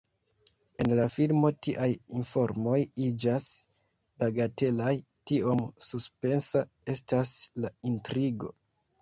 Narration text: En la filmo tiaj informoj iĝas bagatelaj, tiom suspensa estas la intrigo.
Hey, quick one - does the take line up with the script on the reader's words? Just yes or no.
yes